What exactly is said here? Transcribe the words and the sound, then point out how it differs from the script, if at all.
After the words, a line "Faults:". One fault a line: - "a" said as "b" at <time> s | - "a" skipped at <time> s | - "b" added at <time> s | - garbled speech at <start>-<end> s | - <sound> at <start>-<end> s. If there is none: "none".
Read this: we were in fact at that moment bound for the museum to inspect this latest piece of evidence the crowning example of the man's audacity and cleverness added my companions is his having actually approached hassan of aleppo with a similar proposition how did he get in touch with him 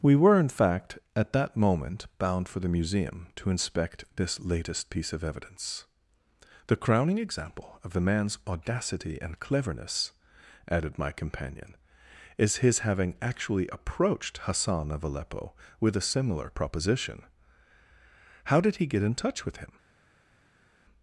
we were in fact at that moment bound for the museum to inspect this latest piece of evidence the crowning example of the man's audacity and cleverness added my companion is his having actually approached hassan of aleppo with a similar proposition how did he get in touch with him
Faults:
- "companions" said as "companion" at 11.1 s